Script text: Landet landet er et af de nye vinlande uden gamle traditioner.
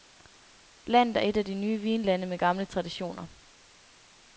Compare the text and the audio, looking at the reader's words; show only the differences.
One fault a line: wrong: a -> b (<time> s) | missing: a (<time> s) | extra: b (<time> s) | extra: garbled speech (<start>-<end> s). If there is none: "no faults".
missing: landet (1.2 s)
wrong: uden -> med (2.3 s)